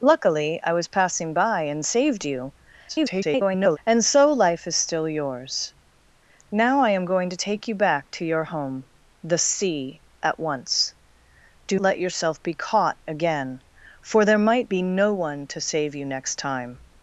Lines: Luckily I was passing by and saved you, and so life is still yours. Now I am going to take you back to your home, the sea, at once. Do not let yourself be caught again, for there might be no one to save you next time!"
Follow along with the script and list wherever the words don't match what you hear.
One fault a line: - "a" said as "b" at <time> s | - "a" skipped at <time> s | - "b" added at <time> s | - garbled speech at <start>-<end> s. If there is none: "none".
- garbled speech at 2.9-3.8 s
- "not" skipped at 11.8 s